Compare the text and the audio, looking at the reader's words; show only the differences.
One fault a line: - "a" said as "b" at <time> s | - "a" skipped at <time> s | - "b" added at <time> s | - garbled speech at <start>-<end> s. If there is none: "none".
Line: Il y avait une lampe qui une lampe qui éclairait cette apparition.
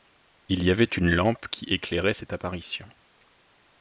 - "une lampe qui" skipped at 1.6 s